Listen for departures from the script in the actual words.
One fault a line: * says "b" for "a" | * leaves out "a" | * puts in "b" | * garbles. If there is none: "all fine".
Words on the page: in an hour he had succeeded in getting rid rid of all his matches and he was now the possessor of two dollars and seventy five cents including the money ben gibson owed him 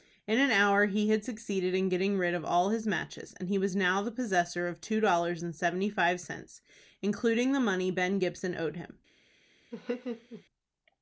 * leaves out "rid"